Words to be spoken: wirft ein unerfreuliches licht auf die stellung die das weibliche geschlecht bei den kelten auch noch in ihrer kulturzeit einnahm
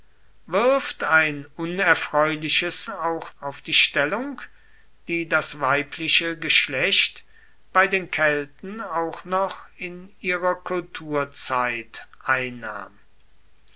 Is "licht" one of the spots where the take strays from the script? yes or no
yes